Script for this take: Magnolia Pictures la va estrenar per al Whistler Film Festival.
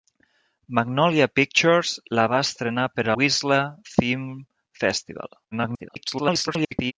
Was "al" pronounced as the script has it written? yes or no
no